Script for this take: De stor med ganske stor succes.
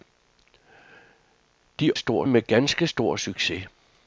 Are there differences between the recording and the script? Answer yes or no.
no